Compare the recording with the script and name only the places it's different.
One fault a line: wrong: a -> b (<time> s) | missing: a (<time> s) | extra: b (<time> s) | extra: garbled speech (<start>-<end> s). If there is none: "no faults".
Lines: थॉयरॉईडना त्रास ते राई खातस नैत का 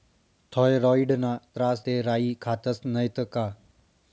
no faults